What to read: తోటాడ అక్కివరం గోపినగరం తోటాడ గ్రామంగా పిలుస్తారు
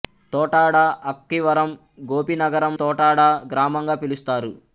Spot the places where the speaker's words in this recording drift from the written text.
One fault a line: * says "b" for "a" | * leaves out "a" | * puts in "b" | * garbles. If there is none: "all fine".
all fine